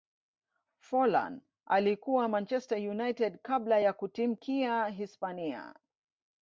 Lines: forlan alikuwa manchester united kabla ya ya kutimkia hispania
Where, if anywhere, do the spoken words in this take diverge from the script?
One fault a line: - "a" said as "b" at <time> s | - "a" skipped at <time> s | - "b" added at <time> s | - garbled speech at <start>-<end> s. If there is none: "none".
- "ya" skipped at 3.9 s